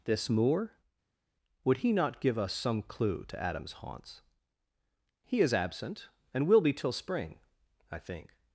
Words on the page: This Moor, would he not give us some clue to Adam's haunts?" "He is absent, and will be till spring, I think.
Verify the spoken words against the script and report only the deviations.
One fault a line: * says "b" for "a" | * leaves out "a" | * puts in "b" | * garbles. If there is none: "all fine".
all fine